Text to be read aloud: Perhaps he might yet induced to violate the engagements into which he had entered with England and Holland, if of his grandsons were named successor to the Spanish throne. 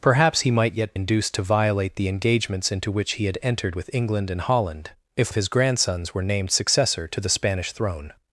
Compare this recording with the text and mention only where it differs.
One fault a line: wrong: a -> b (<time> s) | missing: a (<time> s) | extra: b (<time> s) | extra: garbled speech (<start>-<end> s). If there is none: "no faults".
no faults